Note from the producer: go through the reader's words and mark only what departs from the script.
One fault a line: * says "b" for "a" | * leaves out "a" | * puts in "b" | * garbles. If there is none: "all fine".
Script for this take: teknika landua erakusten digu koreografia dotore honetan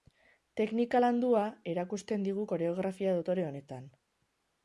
all fine